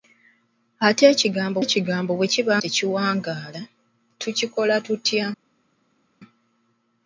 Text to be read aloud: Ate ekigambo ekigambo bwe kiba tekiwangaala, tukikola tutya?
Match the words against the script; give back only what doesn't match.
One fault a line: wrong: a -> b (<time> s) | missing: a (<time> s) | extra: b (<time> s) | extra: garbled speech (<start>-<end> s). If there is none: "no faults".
no faults